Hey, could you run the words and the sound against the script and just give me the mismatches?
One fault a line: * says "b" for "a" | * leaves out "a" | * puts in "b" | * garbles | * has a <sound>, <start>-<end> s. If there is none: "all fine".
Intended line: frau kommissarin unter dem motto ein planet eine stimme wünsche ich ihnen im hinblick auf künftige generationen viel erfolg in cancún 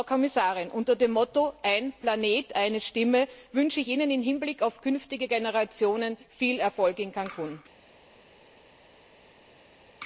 all fine